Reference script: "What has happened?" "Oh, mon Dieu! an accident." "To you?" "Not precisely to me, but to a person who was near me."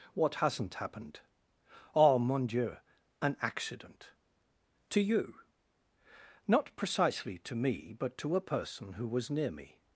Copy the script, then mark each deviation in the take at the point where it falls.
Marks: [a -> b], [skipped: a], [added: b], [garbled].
"What [has -> hasn't] happened?" "Oh, mon Dieu! an accident." "To you?" "Not precisely to me, but to a person who was near me."